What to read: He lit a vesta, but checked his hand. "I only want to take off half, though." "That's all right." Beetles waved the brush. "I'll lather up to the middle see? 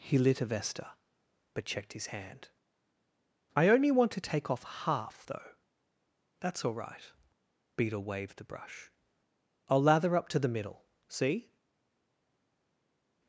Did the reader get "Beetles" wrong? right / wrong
wrong